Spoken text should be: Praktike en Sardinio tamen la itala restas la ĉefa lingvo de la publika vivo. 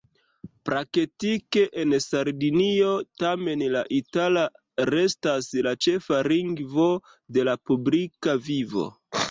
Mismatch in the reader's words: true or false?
false